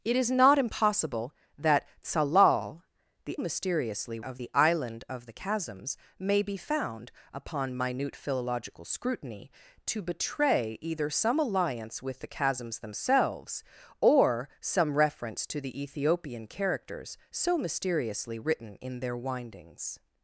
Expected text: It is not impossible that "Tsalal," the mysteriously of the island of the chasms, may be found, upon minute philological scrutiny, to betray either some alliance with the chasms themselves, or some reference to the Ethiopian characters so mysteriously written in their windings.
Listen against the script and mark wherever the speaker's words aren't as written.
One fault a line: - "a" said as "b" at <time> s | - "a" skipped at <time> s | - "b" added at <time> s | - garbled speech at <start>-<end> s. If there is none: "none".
none